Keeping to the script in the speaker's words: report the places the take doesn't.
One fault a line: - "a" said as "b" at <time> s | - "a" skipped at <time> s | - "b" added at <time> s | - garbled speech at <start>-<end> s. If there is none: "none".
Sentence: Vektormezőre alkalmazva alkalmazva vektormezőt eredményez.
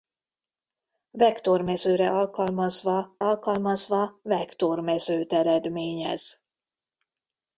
none